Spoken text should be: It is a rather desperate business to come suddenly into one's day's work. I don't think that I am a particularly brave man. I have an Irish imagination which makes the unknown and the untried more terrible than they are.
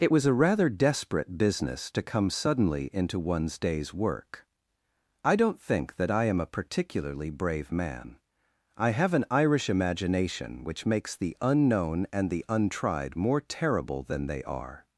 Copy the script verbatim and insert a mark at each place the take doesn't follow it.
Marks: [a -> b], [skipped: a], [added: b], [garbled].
It [is -> was] a rather desperate business to come suddenly into one's day's work. I don't think that I am a particularly brave man. I have an Irish imagination which makes the unknown and the untried more terrible than they are.